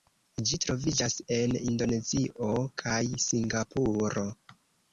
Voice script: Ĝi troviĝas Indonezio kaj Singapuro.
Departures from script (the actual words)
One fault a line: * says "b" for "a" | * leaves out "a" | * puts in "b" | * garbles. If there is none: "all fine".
* puts in "en"